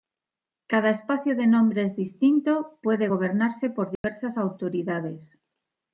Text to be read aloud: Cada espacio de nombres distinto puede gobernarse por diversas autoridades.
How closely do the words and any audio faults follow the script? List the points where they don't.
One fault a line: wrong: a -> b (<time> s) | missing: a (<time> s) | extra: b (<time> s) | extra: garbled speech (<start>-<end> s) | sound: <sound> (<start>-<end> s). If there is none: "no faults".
sound: dropout (4.0-4.0 s)